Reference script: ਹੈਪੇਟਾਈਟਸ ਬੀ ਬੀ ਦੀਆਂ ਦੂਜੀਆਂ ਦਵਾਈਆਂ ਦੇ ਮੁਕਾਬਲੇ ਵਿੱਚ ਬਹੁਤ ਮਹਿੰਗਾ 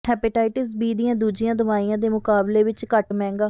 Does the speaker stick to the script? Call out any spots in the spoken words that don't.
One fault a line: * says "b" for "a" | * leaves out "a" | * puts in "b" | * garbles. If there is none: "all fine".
* leaves out "ਬੀ"
* says "ਘੱਟ" for "ਬਹੁਤ"